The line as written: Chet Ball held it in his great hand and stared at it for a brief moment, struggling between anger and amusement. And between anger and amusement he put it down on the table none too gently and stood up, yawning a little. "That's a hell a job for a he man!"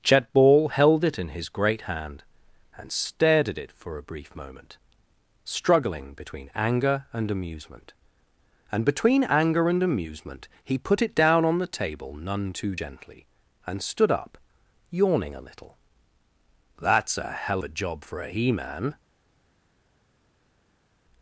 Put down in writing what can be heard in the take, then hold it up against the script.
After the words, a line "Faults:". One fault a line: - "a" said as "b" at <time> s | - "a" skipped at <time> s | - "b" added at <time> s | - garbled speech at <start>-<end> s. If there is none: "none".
Chet Ball held it in his great hand and stared at it for a brief moment, struggling between anger and amusement. And between anger and amusement he put it down on the table none too gently and stood up, yawning a little. "That's a hell a job for a he man!"
Faults:
none